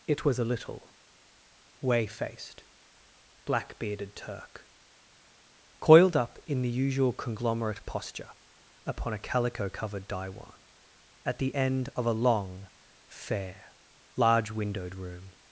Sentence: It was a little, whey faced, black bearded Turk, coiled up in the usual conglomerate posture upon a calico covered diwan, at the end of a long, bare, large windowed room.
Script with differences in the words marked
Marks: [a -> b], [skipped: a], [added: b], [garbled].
It was a little, whey faced, black bearded Turk, coiled up in the usual conglomerate posture upon a calico covered diwan, at the end of a long, [bare, -> fair] large windowed room.